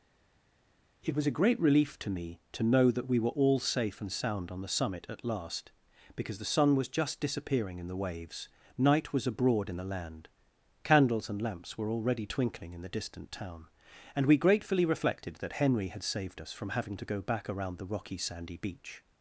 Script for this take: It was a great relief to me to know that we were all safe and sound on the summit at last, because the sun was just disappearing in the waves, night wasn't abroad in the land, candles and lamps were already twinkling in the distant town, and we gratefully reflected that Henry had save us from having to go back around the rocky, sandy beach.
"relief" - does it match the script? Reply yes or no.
yes